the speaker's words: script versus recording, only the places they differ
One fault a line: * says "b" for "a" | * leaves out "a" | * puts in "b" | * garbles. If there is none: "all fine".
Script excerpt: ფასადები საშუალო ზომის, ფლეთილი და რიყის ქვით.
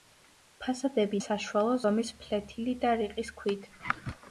all fine